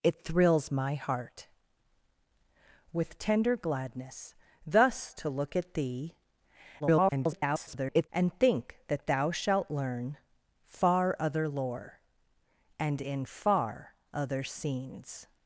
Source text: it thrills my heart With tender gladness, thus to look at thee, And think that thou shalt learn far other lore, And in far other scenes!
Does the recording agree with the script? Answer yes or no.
no